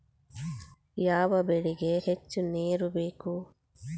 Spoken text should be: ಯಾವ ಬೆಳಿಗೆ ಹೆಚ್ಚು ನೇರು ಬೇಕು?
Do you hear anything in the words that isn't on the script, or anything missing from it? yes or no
no